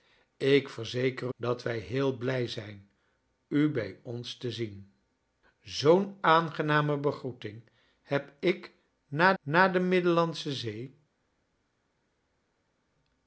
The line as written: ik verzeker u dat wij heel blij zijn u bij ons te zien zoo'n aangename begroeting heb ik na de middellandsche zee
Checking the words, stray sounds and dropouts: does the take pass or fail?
fail